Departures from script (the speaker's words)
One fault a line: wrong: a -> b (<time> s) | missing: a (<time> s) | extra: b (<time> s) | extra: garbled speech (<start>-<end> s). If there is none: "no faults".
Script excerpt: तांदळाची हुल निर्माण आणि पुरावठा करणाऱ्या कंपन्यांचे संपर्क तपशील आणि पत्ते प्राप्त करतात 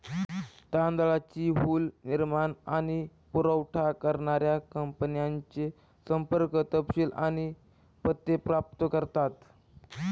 no faults